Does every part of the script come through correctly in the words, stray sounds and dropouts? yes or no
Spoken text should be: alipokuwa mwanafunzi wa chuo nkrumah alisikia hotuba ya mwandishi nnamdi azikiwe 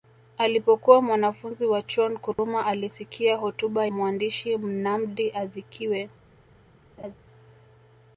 no